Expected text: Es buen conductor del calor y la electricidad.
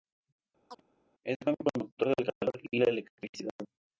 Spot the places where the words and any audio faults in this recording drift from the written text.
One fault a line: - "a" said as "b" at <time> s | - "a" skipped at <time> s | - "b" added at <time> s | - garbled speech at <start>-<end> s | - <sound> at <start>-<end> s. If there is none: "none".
- chirp at 0.7-0.8 s